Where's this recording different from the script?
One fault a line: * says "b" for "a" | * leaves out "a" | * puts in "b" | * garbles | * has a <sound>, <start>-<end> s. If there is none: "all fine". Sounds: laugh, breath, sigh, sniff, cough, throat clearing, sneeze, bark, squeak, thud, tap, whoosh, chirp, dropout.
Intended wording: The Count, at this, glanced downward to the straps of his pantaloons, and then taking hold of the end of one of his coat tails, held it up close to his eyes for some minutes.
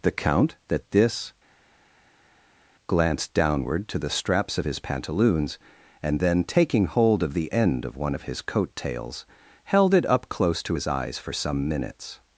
* says "that" for "at"